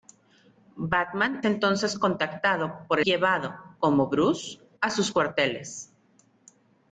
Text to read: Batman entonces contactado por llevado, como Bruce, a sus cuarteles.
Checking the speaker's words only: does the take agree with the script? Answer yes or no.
yes